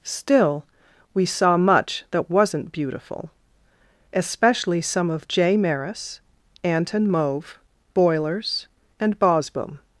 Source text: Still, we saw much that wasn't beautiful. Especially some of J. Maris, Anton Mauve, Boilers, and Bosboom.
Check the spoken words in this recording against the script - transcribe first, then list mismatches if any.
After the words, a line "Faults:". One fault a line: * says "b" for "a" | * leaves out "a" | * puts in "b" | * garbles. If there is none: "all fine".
Still, we saw much that wasn't beautiful. Especially some of J. Maris, Anton Mauve, Boilers, and Bosboom.
Faults:
all fine